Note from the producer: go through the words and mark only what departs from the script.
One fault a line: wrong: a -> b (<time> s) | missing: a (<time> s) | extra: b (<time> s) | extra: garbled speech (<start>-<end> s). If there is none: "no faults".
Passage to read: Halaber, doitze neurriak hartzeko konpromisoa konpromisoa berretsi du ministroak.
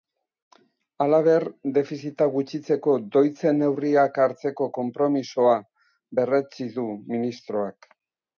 extra: defizita gutxitzeko (1.8 s)
missing: konpromisoa (5.6 s)